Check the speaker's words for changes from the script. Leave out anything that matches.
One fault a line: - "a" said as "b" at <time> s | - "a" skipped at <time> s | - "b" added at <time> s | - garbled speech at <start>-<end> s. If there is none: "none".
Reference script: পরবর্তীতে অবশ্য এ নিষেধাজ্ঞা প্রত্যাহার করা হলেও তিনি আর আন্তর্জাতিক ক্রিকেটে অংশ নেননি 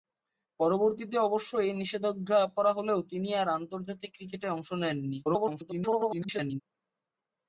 - "প্রত্যাহার" skipped at 2.4 s
- garbled speech at 5.2-6.6 s